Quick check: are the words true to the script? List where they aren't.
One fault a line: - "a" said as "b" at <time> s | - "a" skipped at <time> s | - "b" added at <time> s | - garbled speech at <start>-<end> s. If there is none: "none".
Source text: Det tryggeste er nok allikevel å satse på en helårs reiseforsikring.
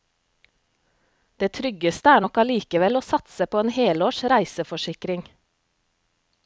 none